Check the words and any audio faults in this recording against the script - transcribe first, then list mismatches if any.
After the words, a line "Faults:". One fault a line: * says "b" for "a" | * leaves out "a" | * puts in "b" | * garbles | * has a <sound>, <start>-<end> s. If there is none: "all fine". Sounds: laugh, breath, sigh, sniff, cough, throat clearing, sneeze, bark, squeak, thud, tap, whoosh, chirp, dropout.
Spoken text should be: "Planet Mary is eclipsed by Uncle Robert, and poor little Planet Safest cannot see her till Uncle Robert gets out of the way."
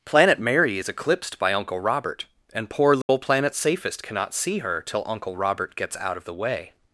"Planet Mary is eclipsed by Uncle Robert, and poor little Planet Safest cannot see her till Uncle Robert gets out of the way."
Faults:
* has a dropout, 3.0-3.1 s